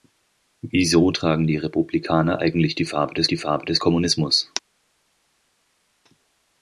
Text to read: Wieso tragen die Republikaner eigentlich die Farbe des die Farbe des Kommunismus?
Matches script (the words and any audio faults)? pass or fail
pass